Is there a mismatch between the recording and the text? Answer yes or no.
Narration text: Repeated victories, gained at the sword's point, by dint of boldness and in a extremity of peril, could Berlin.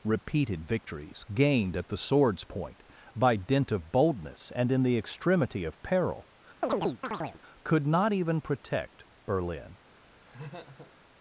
yes